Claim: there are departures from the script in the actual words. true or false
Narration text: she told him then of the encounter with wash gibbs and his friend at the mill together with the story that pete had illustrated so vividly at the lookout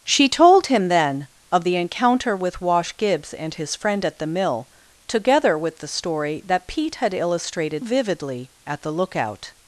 true